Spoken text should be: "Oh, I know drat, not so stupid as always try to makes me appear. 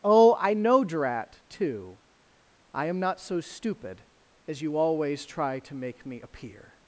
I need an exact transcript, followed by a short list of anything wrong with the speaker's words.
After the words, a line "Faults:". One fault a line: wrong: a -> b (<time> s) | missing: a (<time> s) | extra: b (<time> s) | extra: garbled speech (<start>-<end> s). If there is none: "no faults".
"Oh, I know drat, too; I am not so stupid as you always try to make me appear.
Faults:
extra: too I am (1.5 s)
extra: you (4.6 s)
wrong: makes -> make (5.8 s)